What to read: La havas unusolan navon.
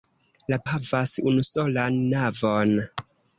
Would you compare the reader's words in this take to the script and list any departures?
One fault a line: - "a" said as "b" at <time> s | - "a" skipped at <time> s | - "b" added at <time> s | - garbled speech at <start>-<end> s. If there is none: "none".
none